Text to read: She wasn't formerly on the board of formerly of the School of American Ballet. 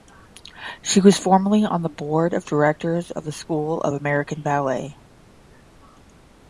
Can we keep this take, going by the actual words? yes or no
no